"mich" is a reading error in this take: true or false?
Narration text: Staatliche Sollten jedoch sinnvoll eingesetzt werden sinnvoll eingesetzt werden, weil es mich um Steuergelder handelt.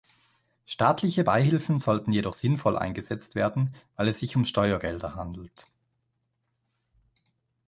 true